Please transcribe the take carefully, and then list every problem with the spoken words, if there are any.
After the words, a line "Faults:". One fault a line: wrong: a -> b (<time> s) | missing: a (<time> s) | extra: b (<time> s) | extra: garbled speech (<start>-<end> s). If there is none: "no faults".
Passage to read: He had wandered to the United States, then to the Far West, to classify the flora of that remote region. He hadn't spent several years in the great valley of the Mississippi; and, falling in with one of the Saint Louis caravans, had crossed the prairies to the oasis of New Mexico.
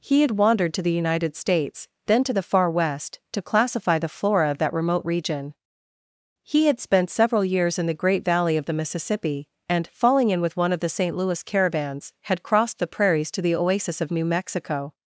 He had wandered to the United States, then to the Far West, to classify the flora of that remote region. He had spent several years in the great valley of the Mississippi; and, falling in with one of the Saint Louis caravans, had crossed the prairies to the oasis of New Mexico.
Faults:
wrong: hadn't -> had (6.7 s)